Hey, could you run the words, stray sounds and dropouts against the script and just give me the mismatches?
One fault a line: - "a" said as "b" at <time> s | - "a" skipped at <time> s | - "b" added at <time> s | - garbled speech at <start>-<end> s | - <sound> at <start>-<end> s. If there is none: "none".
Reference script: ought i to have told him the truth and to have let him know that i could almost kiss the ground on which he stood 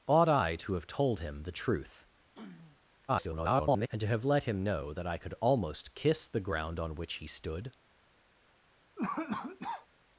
- throat clearing at 2.4-2.8 s
- garbled speech at 3.1-3.9 s
- cough at 9.0-9.9 s